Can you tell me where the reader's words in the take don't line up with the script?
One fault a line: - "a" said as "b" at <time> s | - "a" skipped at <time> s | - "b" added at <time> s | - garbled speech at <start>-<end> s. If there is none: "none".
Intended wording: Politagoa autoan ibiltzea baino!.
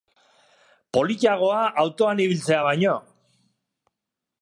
none